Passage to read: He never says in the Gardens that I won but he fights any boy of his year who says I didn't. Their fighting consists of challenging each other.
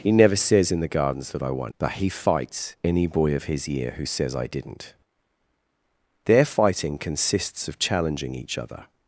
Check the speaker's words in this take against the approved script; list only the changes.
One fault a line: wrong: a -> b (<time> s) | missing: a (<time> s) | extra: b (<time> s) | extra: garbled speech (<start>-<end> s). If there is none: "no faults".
no faults